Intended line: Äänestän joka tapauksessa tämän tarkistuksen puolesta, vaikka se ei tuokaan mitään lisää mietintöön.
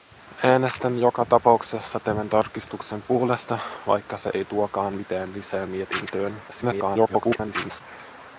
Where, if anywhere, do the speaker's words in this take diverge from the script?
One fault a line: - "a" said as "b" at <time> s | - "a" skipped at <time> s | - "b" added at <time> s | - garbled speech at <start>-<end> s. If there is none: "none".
- garbled speech at 6.5-7.8 s